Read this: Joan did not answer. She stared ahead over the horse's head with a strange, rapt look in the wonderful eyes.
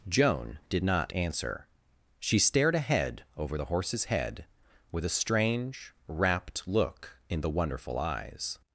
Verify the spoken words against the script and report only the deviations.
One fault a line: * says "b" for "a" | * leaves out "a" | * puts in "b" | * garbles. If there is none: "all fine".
all fine